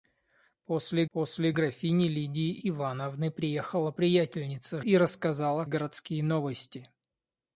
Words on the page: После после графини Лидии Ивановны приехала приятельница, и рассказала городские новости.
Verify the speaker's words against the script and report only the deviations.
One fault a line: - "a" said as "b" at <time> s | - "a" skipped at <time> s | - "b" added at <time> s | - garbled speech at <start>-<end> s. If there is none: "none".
none